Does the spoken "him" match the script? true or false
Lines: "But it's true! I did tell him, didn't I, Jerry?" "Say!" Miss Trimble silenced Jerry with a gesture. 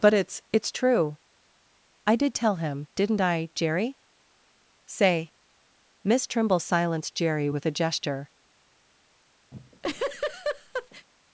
true